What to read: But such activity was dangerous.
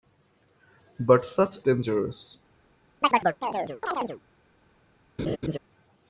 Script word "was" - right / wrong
wrong